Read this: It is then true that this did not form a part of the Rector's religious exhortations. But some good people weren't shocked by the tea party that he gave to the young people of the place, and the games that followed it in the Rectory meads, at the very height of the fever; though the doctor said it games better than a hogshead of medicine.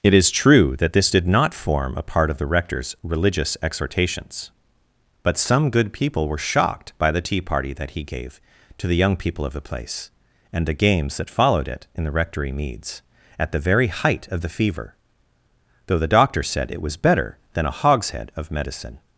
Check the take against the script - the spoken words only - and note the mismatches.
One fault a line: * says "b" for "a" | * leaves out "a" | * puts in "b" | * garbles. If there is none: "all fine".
* leaves out "then"
* says "were" for "weren't"
* says "was" for "games"